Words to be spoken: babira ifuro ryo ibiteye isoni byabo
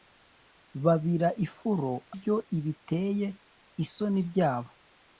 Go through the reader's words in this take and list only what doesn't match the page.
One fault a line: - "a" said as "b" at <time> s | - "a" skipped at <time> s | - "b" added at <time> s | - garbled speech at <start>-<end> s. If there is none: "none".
none